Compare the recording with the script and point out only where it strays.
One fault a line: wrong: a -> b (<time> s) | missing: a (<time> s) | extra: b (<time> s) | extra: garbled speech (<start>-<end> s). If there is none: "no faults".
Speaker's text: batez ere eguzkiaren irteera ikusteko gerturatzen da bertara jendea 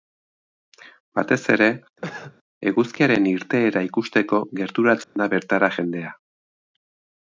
no faults